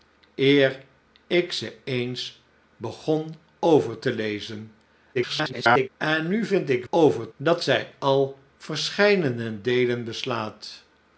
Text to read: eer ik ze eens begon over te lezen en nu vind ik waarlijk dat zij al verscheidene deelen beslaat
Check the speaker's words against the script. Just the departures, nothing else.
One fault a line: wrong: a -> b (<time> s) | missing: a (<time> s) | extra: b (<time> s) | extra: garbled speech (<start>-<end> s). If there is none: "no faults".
extra: garbled speech (5.1-5.9 s)
wrong: waarlijk -> over (6.9 s)